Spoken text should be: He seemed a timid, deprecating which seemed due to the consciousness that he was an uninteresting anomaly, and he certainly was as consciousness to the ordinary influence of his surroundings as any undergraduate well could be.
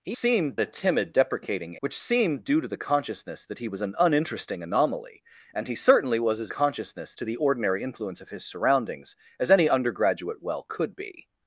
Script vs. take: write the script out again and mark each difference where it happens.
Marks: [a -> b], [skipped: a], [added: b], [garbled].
He seemed a timid, deprecating which seemed due to the consciousness that he was an uninteresting anomaly, and he certainly was as consciousness to the ordinary influence of his surroundings as any undergraduate well could be.